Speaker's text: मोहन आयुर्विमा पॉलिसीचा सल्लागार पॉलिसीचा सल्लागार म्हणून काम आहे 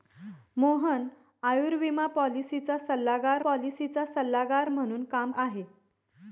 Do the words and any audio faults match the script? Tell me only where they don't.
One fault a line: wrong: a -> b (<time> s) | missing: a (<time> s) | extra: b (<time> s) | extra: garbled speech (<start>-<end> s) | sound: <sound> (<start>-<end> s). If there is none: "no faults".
no faults